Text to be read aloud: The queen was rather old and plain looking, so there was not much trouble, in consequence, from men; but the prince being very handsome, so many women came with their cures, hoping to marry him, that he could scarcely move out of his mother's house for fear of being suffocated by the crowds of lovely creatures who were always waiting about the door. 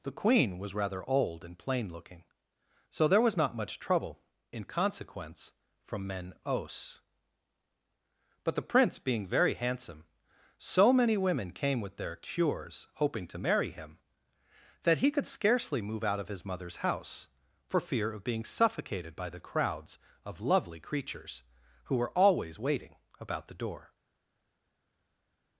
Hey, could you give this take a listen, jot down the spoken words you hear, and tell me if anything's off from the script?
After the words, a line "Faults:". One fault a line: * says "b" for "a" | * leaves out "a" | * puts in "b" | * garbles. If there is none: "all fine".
The queen was rather old and plain looking, so there was not much trouble, in consequence, from men; os but the prince being very handsome, so many women came with their cures, hoping to marry him, that he could scarcely move out of his mother's house for fear of being suffocated by the crowds of lovely creatures who were always waiting about the door.
Faults:
* puts in "os"